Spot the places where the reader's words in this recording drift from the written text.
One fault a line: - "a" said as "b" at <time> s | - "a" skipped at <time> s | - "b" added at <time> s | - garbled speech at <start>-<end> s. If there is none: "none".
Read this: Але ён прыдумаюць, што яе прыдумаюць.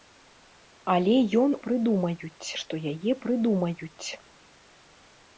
none